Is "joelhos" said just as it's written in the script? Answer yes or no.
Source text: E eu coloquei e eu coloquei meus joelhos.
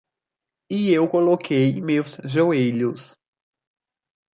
yes